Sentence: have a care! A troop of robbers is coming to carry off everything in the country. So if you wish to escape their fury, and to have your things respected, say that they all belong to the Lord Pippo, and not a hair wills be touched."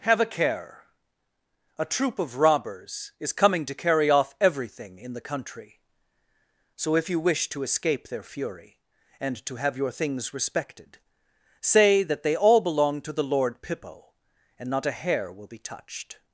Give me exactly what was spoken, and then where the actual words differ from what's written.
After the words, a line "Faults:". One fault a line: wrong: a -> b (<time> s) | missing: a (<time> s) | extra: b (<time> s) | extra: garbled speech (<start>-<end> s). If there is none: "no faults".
have a care! A troop of robbers is coming to carry off everything in the country. So if you wish to escape their fury, and to have your things respected, say that they all belong to the Lord Pippo, and not a hair will be touched."
Faults:
wrong: wills -> will (15.3 s)